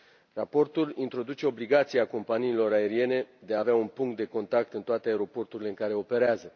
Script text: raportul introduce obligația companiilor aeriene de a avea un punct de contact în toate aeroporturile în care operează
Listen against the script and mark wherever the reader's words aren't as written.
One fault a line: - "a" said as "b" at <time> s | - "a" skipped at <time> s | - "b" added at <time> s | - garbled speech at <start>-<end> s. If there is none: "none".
none